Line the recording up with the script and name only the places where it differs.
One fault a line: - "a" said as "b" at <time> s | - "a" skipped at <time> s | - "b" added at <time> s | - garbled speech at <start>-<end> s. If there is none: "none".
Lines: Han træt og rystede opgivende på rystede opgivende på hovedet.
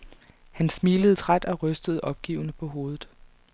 - "smilede" added at 0.7 s
- "rystede opgivende på" skipped at 2.7 s